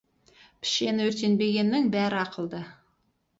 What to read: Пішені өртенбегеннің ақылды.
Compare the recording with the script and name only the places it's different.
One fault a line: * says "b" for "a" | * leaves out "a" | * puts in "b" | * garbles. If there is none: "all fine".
* puts in "бәрі"